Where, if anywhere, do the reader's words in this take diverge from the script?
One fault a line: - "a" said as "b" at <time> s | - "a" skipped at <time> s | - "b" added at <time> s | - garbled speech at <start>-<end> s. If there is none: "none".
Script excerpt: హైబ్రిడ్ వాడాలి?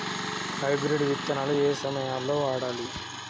- "విత్తనాలు ఏయే సమయాల్లో" added at 1.0 s